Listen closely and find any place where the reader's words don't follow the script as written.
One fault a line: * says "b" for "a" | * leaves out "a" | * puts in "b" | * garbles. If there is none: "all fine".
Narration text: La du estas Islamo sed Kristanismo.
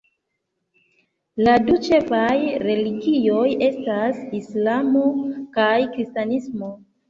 * puts in "ĉefaj religioj"
* says "kaj" for "sed"